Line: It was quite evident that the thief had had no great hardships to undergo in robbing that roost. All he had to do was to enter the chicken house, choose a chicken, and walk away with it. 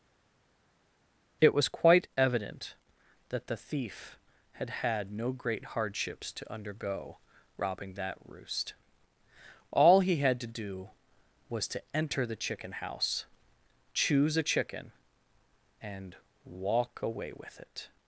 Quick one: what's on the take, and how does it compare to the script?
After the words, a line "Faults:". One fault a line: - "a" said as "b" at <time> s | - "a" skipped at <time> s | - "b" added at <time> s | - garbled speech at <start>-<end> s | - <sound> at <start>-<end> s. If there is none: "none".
It was quite evident that the thief had had no great hardships to undergo robbing that roost. All he had to do was to enter the chicken house, choose a chicken, and walk away with it.
Faults:
- "in" skipped at 7.2 s